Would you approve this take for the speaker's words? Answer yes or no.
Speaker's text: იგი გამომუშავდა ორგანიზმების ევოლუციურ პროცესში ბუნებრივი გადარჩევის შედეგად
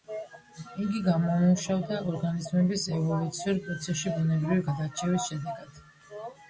yes